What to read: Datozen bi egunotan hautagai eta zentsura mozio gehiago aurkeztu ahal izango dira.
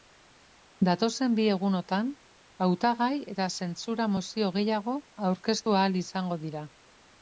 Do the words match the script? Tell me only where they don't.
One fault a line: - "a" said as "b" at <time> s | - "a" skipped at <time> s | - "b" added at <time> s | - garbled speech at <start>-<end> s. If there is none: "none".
none